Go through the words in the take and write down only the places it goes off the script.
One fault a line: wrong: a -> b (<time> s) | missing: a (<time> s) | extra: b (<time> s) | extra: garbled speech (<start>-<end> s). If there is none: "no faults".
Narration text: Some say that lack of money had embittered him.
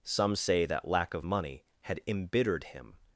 no faults